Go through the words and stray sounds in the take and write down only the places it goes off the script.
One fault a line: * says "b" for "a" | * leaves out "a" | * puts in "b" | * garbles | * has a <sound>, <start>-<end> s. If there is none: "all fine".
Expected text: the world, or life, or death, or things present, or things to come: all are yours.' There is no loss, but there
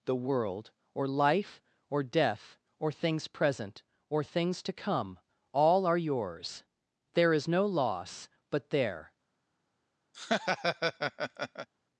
* has a laugh, 10.1-11.7 s